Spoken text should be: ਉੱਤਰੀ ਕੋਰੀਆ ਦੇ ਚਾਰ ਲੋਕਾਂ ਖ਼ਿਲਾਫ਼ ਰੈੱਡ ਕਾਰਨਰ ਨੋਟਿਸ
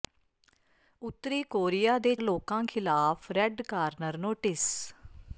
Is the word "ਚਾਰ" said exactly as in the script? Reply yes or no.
no